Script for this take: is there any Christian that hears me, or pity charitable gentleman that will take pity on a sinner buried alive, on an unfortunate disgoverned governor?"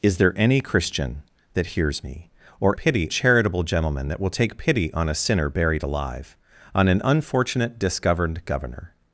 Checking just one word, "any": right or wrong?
right